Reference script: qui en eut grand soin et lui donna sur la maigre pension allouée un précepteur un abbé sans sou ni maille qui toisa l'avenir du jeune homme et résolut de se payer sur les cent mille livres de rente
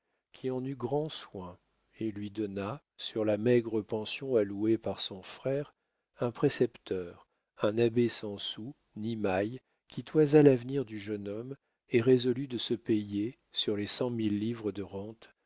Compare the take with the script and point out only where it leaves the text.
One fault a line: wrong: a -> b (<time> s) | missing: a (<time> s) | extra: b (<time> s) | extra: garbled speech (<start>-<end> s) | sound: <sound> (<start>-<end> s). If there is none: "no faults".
extra: par son frère (4.8 s)